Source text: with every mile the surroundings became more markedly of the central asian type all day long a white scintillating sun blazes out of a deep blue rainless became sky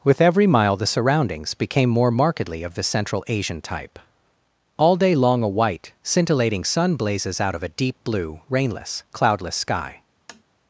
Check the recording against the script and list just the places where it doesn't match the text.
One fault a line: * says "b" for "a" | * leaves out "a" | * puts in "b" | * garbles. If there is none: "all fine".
* says "cloudless" for "became"